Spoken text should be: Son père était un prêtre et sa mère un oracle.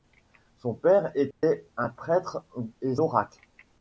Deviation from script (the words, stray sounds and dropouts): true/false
true